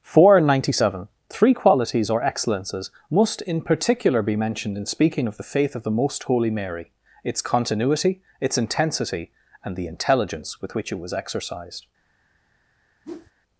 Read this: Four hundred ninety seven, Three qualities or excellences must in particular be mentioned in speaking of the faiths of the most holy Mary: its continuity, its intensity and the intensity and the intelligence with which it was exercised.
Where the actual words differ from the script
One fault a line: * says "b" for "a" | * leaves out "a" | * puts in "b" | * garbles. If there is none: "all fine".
* says "faith" for "faiths"
* leaves out "intensity and the"